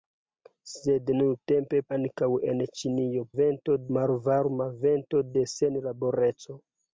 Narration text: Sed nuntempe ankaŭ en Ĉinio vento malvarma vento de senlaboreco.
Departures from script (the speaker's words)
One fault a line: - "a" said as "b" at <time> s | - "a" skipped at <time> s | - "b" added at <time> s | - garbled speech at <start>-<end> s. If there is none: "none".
none